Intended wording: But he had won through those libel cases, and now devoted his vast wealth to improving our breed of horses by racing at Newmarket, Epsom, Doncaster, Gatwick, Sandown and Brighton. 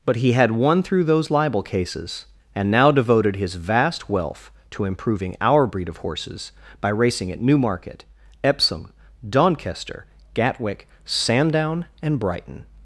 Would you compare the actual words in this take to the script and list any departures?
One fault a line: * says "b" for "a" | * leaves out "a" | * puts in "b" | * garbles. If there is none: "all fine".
all fine